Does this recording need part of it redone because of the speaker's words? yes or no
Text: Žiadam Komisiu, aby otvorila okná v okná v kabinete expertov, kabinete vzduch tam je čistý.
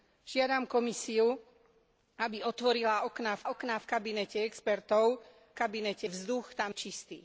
no